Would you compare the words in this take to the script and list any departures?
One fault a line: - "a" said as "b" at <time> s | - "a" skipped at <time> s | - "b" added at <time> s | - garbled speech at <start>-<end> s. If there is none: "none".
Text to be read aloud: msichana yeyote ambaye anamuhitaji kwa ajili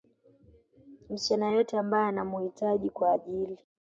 none